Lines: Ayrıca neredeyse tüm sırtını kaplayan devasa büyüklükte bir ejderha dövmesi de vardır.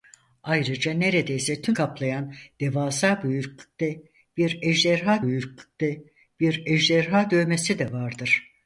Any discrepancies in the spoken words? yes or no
yes